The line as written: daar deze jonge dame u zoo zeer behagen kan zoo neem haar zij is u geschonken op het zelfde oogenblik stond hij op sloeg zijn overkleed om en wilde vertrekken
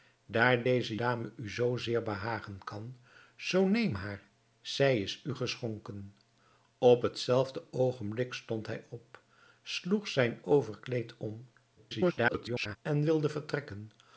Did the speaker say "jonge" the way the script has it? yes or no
no